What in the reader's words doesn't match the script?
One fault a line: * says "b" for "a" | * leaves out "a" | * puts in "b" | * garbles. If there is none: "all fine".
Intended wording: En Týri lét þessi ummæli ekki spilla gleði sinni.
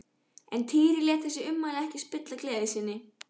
all fine